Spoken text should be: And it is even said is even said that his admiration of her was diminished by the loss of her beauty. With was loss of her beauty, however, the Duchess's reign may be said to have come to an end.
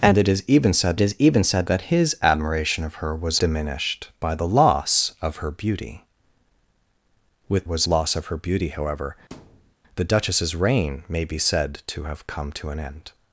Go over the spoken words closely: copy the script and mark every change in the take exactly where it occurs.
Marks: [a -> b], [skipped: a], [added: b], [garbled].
And it is even said is even said that his admiration of her was diminished by the loss of her beauty. With was loss of her beauty, however, the Duchess's reign may be said to have come to an end.